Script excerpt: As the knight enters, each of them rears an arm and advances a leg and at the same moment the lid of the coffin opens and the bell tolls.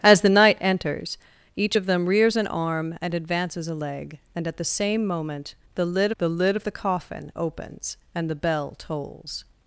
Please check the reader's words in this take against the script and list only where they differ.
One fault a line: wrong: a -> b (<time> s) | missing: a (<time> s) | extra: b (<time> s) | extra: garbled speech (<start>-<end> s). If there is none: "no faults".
extra: the lid (6.2 s)